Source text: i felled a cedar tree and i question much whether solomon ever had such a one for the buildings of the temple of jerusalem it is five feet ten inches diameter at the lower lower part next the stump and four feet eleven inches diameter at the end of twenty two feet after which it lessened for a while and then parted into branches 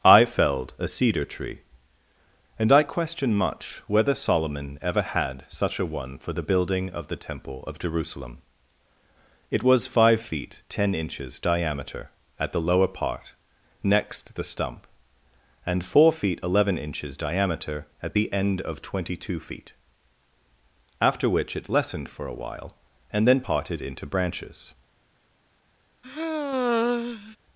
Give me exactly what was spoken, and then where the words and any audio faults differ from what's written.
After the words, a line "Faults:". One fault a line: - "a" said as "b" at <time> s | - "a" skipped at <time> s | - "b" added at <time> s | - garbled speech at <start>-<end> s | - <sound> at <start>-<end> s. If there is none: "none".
i felled a cedar tree and i question much whether solomon ever had such a one for the building of the temple of jerusalem it was five feet ten inches diameter at the lower part next the stump and four feet eleven inches diameter at the end of twenty two feet after which it lessened for a while and then parted into branches
Faults:
- "buildings" said as "building" at 6.4 s
- "is" said as "was" at 9.6 s
- "lower" skipped at 12.9 s
- sigh at 26.0-27.4 s